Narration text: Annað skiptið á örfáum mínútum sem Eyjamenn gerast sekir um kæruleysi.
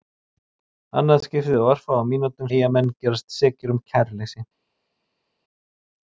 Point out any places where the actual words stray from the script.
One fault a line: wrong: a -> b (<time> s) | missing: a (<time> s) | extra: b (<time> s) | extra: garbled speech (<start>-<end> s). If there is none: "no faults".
missing: sem (2.5 s)